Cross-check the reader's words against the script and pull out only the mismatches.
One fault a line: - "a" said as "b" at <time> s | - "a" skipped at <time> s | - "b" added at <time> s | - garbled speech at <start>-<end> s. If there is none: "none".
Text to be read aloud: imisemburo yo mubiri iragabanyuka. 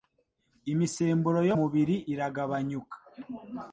none